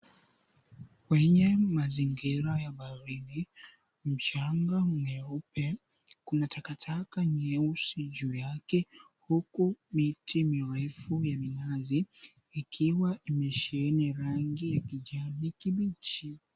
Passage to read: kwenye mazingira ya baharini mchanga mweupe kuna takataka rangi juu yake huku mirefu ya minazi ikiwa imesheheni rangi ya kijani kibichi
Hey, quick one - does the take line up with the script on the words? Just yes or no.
no